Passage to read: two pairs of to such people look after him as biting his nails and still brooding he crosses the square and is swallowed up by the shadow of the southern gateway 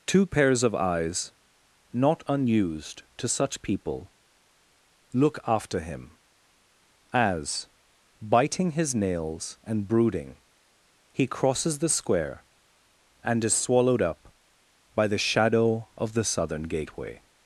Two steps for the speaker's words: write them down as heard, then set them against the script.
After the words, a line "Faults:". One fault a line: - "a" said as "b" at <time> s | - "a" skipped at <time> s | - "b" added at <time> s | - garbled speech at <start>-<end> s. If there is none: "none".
two pairs of eyes not unused to such people look after him as biting his nails and brooding he crosses the square and is swallowed up by the shadow of the southern gateway
Faults:
- "eyes not unused" added at 0.8 s
- "still" skipped at 9.9 s